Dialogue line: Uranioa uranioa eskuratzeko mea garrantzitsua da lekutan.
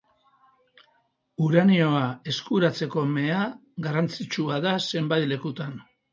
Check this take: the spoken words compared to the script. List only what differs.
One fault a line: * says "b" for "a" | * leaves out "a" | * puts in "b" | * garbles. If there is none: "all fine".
* leaves out "uranioa"
* puts in "zenbait"